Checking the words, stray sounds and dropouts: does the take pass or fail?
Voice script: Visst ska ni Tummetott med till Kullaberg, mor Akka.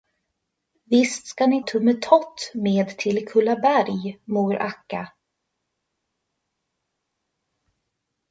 pass